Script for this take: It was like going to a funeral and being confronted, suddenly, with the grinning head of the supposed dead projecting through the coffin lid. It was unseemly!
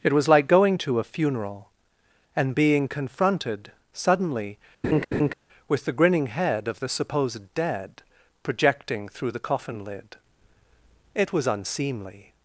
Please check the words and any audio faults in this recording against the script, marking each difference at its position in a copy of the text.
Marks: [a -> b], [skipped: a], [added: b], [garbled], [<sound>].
It was like going to a funeral and being confronted, suddenly, [laugh] with the grinning head of the supposed dead projecting through the coffin lid. It was unseemly!